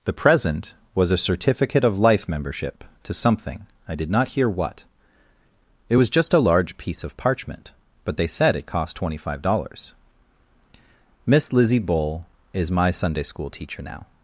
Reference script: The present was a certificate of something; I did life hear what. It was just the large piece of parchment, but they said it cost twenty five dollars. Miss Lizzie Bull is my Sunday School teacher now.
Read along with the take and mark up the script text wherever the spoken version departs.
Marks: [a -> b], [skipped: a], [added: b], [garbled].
The present was a certificate of [added: life membership to] something; I did [life -> not] hear what. It was just [the -> a] large piece of parchment, but they said it cost twenty five dollars. Miss Lizzie Bull is my Sunday School teacher now.